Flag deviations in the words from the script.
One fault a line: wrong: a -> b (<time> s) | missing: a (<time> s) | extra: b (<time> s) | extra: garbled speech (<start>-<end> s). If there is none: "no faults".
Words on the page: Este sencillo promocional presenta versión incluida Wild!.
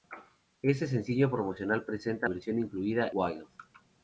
no faults